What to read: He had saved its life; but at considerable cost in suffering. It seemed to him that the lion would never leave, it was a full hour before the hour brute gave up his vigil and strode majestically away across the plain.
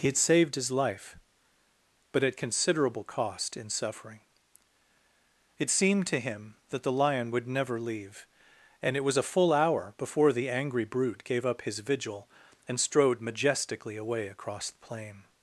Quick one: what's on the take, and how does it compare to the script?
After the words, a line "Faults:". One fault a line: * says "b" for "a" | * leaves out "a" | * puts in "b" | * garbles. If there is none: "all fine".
He had saved his life; but at considerable cost in suffering. It seemed to him that the lion would never leave, and it was a full hour before the angry brute gave up his vigil and strode majestically away across the plain.
Faults:
* says "his" for "its"
* puts in "and"
* says "angry" for "hour"